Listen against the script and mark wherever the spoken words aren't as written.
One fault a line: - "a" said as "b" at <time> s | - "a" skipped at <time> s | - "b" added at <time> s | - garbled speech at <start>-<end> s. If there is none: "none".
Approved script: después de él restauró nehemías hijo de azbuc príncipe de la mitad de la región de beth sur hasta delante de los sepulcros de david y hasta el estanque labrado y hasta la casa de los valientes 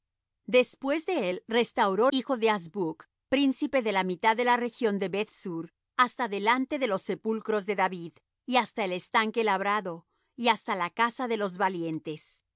- "nehemías" skipped at 2.1 s